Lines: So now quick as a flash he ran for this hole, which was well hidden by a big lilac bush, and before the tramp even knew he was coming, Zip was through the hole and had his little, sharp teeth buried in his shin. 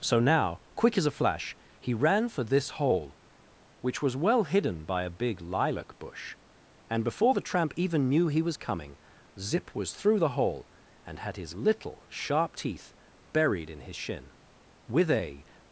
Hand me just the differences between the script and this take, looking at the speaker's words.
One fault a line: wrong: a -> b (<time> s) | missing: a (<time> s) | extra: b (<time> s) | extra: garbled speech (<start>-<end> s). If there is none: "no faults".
extra: With a (14.9 s)